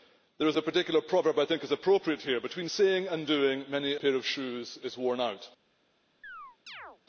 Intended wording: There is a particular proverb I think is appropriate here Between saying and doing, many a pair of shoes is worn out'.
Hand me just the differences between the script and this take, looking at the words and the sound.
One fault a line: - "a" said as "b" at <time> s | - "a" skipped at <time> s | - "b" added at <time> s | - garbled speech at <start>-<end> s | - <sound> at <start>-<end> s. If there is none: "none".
- "a" skipped at 3.9 s
- chirp at 6.2-7.0 s